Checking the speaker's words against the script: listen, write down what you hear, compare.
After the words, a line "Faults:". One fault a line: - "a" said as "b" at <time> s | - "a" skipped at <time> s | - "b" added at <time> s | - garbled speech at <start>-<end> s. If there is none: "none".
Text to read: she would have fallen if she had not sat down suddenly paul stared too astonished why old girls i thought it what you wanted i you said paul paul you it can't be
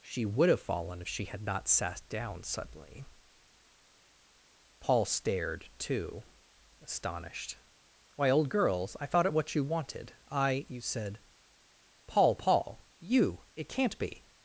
she would have fallen if she had not sat down suddenly paul stared too astonished why old girls i thought it what you wanted i you said paul paul you it can't be
Faults:
none